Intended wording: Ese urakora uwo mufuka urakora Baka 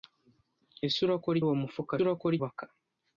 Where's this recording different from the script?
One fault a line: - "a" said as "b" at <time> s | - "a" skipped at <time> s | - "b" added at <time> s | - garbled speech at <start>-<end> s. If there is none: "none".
none